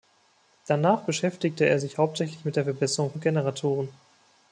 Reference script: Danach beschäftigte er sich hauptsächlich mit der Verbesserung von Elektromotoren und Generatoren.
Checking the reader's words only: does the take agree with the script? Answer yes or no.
no